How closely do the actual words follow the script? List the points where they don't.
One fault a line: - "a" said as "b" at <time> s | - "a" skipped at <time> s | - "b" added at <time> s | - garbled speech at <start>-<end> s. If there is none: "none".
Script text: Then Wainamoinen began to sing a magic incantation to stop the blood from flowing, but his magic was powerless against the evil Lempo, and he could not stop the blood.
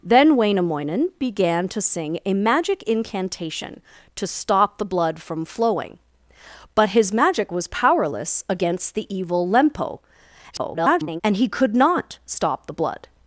- garbled speech at 10.5-11.2 s